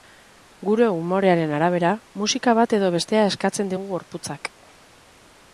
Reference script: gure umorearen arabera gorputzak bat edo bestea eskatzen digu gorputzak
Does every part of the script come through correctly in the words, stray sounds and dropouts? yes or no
no